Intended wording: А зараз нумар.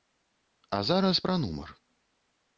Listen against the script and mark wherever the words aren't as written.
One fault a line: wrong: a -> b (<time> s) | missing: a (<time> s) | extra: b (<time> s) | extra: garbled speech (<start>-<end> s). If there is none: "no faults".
extra: пра (1.3 s)